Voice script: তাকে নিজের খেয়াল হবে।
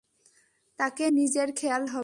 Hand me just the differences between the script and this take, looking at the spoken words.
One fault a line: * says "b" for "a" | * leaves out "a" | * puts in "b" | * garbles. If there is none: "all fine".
all fine